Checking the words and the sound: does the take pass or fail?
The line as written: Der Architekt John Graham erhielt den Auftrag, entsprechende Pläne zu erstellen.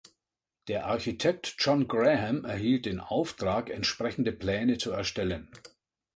pass